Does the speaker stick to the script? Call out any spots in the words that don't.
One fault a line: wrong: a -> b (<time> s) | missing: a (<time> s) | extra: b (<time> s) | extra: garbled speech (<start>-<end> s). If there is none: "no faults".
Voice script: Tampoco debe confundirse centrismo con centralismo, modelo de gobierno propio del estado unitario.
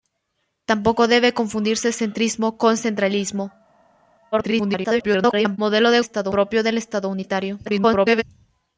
extra: garbled speech (4.3-5.6 s)
wrong: gobierno -> estado (6.0 s)
extra: garbled speech (7.6-8.2 s)